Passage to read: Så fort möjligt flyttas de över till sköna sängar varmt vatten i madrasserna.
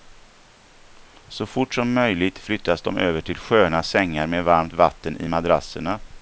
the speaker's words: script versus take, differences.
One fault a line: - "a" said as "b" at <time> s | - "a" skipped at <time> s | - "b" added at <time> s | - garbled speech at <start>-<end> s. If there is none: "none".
- "som" added at 1.7 s
- "med" added at 4.3 s